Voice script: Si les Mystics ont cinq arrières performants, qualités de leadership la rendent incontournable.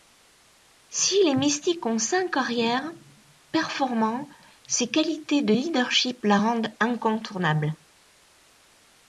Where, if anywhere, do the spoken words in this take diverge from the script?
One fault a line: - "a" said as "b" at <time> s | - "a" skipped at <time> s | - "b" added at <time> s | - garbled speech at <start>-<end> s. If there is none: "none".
- "ses" added at 4.7 s